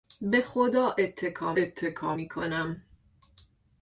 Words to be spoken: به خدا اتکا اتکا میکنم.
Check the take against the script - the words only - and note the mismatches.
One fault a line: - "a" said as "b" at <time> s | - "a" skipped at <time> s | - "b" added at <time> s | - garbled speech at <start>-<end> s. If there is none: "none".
none